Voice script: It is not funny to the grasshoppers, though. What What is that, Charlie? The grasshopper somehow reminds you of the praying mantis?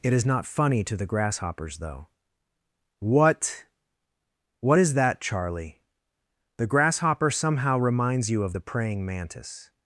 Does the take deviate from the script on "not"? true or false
false